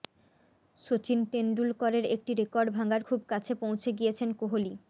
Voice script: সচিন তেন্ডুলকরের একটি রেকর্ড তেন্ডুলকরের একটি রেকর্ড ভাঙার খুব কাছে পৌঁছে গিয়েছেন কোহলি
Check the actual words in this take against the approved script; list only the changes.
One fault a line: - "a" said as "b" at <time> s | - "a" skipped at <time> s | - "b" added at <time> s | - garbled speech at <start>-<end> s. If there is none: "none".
- "তেন্ডুলকরের একটি রেকর্ড" skipped at 2.7 s